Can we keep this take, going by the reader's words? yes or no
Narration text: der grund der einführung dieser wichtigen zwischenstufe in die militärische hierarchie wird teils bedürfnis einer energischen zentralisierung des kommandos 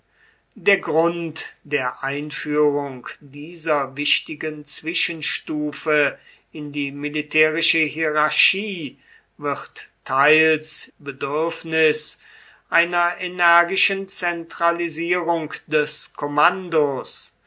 yes